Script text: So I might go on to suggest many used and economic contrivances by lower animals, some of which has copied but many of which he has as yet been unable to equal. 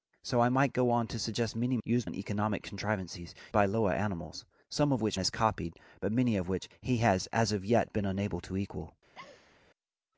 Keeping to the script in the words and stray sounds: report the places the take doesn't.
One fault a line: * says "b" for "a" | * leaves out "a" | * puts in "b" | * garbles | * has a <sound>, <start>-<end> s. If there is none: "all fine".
* has a laugh, 9.1-9.6 s